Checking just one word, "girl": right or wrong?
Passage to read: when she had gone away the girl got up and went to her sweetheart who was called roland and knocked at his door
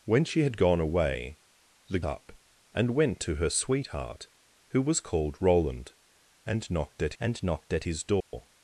wrong